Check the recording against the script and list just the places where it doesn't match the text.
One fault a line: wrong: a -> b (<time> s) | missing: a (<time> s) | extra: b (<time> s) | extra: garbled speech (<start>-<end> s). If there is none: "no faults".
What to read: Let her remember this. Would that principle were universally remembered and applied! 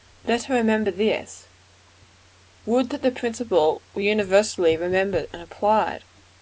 extra: the (3.0 s)